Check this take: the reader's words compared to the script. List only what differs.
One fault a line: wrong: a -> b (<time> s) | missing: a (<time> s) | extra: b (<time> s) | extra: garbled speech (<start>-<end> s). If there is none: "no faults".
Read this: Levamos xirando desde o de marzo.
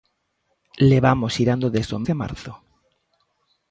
no faults